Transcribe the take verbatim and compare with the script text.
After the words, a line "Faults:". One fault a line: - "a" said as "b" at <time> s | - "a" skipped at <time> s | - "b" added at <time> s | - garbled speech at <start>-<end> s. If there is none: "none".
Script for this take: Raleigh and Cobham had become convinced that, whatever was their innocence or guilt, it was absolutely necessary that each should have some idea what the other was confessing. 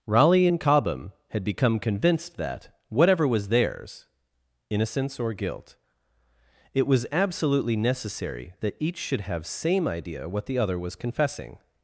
Raleigh and Cobham had become convinced that, whatever was theirs innocence or guilt, it was absolutely necessary that each should have same idea what the other was confessing.
Faults:
- "their" said as "theirs" at 3.5 s
- "some" said as "same" at 9.5 s